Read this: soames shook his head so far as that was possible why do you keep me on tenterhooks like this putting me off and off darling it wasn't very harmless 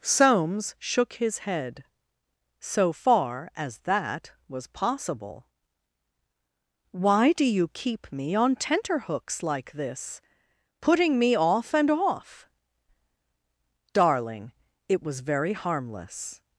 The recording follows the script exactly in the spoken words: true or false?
false